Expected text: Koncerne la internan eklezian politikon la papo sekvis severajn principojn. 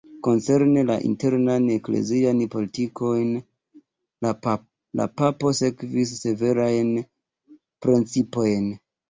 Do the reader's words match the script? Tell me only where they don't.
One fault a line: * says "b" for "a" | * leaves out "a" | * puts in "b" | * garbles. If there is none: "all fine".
all fine